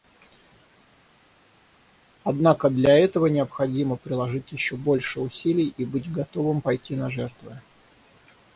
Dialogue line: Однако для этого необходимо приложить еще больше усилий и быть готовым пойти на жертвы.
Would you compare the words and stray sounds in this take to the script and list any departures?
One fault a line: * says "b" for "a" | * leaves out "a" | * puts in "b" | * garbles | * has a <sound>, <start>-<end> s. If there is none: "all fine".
all fine